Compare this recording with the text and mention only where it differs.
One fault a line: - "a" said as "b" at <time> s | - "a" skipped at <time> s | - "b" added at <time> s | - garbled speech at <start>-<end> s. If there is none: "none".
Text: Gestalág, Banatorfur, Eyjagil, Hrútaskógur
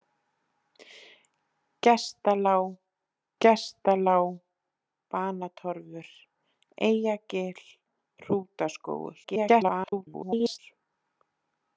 - "gestalág" added at 3.4 s
- garbled speech at 9.2-10.6 s